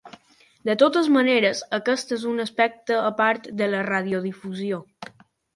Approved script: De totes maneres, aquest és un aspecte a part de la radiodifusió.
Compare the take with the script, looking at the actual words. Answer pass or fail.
pass